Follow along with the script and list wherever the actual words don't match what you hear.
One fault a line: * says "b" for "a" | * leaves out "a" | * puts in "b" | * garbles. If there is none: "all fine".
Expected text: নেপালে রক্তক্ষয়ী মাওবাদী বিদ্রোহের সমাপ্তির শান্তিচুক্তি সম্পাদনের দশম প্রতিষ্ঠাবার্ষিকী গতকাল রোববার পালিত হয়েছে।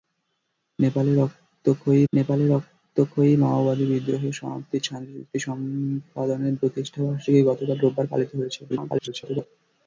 * puts in "নেপালে রক্তক্ষয়ী"
* leaves out "দশম"
* garbles